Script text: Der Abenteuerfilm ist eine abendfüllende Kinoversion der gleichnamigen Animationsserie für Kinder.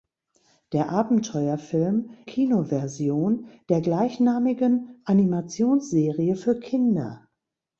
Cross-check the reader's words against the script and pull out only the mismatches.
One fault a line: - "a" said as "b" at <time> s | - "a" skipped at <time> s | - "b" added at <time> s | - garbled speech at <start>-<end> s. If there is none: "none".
- "ist eine abendfüllende" skipped at 2.1 s